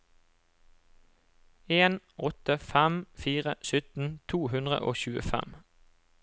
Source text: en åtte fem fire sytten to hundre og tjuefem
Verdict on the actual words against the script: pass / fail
pass